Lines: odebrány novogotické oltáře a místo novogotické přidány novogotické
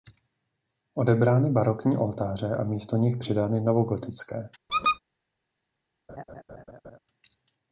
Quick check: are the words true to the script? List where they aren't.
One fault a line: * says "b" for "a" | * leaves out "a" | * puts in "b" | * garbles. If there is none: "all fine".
* says "barokní" for "novogotické"
* says "nich" for "novogotické"